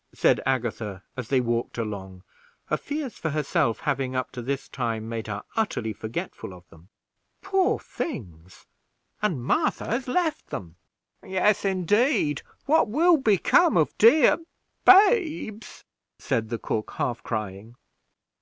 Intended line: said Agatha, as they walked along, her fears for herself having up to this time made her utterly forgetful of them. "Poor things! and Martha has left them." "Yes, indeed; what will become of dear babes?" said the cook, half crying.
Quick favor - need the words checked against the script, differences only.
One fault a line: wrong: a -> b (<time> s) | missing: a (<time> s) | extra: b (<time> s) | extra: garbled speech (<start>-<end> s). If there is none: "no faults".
no faults